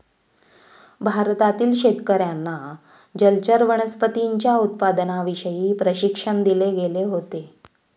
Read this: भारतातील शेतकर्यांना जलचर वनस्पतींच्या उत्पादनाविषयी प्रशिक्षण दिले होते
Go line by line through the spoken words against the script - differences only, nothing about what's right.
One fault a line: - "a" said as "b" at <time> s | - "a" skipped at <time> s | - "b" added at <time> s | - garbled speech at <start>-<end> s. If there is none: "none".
- "गेले" added at 6.7 s